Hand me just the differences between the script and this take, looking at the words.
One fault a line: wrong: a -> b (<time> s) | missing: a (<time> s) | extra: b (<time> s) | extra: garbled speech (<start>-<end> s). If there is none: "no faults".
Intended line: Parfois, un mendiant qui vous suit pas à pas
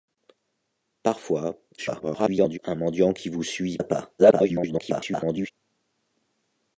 extra: garbled speech (1.8-2.6 s)
missing: pas (3.8 s)
extra: garbled speech (4.2-5.5 s)